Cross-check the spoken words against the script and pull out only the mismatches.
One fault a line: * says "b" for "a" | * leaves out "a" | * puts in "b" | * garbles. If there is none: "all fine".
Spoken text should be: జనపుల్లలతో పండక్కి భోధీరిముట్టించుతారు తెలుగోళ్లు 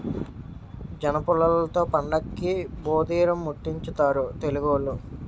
all fine